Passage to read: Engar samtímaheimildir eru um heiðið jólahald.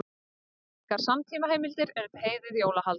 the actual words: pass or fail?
pass